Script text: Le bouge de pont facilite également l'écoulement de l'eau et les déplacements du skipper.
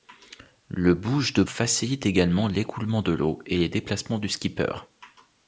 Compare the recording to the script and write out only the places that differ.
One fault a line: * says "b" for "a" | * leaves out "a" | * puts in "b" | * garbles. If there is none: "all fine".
* leaves out "pont"